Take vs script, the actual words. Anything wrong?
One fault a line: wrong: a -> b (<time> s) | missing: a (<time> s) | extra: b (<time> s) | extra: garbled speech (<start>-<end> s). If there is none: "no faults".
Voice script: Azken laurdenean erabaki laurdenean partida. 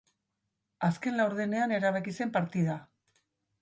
wrong: laurdenean -> zen (2.2 s)